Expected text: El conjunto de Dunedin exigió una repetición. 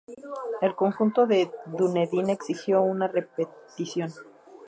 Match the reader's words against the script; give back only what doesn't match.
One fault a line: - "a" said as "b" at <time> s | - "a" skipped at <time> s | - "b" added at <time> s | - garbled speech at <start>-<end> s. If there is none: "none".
none